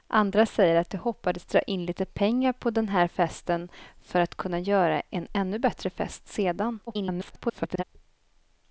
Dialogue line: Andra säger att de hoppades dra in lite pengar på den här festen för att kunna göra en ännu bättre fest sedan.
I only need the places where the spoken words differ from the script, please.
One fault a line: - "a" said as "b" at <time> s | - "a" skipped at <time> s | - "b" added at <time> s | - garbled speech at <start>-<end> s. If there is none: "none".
- garbled speech at 6.9-7.8 s